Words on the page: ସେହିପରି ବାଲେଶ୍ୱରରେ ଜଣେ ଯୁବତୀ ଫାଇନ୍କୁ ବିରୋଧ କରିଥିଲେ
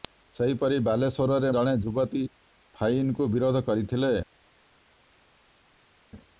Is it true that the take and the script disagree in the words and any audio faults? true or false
false